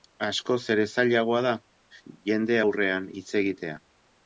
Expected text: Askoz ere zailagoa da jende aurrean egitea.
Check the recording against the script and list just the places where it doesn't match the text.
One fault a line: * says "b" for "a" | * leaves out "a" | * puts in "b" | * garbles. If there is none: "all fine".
* puts in "hitz"